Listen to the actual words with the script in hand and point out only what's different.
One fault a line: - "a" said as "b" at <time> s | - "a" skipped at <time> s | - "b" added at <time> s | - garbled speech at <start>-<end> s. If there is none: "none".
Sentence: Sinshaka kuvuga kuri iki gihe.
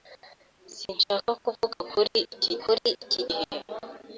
- "kuri iki" added at 2.6 s